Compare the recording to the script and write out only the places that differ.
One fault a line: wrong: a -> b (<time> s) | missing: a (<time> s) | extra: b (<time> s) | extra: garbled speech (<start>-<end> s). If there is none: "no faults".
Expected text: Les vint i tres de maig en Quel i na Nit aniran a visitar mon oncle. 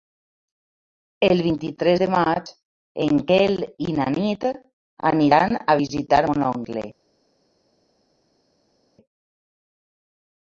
wrong: Les -> El (1.3 s)